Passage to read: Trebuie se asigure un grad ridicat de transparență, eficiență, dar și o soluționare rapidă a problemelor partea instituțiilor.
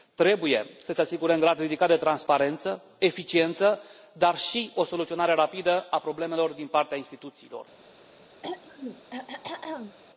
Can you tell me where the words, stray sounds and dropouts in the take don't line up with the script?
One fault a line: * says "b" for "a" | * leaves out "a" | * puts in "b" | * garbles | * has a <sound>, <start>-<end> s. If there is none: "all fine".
* puts in "să"
* puts in "din"
* has a throat clearing, 8.4-10.0 s